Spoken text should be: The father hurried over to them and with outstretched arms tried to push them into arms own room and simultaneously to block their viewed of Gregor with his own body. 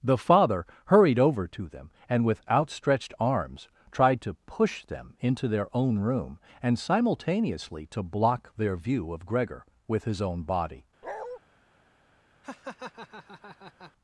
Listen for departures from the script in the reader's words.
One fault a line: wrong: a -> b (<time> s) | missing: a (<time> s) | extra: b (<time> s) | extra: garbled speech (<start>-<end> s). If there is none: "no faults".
wrong: arms -> their (5.5 s)
wrong: viewed -> view (8.8 s)